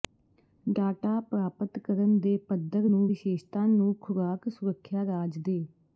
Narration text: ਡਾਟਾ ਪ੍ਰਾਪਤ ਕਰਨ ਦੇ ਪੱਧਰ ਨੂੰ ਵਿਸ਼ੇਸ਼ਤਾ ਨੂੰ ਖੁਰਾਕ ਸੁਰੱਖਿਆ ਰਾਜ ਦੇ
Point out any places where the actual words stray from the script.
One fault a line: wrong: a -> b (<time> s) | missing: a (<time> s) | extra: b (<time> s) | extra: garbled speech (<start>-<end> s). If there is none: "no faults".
no faults